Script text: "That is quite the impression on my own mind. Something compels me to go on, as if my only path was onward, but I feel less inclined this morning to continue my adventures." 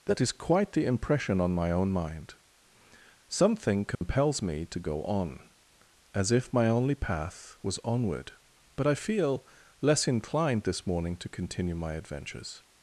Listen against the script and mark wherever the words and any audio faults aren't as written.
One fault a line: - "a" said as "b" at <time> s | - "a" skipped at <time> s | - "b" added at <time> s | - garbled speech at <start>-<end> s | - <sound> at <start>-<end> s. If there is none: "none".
- dropout at 3.9-4.0 s